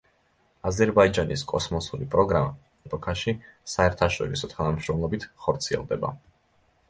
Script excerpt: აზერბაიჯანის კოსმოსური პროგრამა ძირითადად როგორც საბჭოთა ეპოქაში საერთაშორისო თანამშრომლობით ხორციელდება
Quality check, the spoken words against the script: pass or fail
fail